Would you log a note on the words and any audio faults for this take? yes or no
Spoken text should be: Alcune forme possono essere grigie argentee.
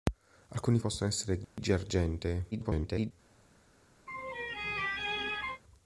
yes